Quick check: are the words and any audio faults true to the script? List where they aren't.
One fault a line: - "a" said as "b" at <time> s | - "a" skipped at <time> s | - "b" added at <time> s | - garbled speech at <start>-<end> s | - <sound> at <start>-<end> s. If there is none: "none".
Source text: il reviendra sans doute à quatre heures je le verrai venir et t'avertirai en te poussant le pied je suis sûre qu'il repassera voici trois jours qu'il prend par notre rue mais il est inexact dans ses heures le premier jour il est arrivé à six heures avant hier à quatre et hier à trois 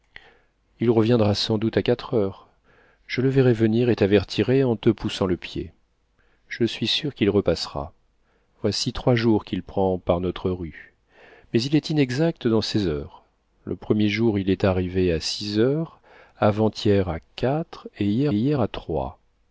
- "hier" added at 18.3 s